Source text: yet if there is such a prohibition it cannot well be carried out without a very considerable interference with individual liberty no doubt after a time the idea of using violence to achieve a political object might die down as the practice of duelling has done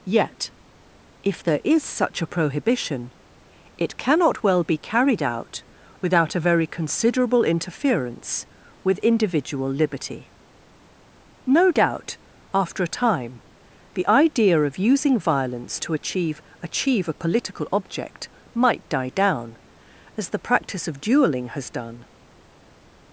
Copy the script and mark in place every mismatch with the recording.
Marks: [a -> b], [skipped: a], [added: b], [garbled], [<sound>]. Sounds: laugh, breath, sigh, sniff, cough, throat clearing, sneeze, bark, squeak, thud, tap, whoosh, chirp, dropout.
yet if there is such a prohibition it cannot well be carried out without a very considerable interference with individual liberty no doubt after a time the idea of using violence to achieve [added: achieve] a political object might die down as the practice of duelling has done